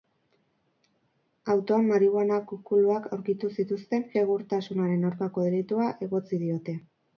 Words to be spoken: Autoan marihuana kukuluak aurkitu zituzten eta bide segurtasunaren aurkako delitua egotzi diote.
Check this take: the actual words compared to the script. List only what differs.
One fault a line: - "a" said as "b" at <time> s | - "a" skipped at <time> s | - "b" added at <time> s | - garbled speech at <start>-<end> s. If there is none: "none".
- "eta bide" skipped at 4.1 s